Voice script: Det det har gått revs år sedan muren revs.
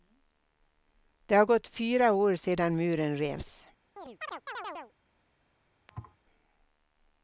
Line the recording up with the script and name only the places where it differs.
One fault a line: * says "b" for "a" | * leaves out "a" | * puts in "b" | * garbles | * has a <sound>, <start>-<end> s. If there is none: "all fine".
* leaves out "det"
* says "fyra" for "revs"
* has a chirp, 4.0-4.9 s
* has a thud, 5.9-6.2 s